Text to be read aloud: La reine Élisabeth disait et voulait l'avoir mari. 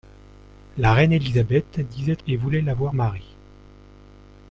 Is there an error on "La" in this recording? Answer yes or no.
no